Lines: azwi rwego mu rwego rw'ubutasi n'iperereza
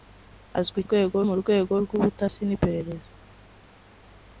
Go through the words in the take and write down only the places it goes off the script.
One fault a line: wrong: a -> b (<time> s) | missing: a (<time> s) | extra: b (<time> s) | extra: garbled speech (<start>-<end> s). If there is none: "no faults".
no faults